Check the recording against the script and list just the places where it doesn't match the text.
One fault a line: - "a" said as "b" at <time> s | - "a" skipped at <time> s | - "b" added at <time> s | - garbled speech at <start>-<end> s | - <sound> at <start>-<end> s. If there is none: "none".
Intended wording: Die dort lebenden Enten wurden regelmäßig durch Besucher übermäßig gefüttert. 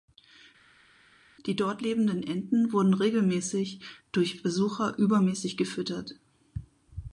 none